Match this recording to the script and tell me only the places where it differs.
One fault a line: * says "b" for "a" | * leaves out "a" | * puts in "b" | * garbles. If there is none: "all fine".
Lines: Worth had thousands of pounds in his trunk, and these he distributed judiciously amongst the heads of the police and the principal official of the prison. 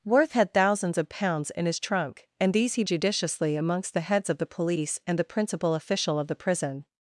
* leaves out "distributed"